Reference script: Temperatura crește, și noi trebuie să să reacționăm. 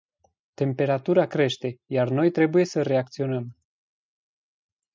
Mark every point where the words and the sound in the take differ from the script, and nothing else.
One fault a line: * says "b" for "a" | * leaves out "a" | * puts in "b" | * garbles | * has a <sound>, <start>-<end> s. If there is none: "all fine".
* says "iar" for "și"
* leaves out "să"